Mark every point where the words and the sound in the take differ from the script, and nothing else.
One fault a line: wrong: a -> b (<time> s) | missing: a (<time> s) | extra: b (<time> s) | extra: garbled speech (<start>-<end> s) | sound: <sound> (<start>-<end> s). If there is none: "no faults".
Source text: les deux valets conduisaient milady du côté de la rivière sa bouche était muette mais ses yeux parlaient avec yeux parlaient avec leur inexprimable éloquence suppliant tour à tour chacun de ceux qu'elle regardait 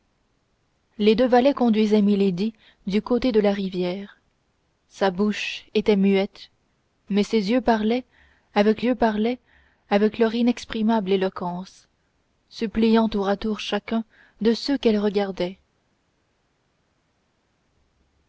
no faults